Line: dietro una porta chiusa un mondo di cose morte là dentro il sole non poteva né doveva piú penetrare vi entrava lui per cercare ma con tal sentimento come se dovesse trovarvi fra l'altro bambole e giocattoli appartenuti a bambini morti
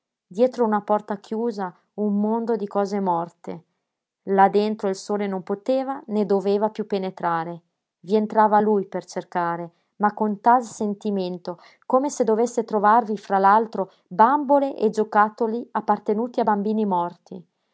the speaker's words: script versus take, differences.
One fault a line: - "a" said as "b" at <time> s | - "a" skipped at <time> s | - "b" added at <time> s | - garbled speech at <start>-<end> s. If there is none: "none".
none